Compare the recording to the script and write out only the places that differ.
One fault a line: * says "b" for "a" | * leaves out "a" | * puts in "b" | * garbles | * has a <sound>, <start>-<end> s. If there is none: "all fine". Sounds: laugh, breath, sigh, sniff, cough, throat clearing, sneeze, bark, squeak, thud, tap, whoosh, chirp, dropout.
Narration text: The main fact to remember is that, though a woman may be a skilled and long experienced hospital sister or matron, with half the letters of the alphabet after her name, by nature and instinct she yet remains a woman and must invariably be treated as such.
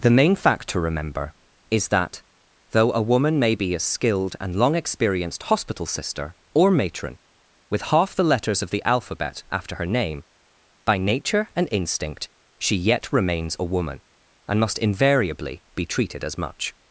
* says "much" for "such"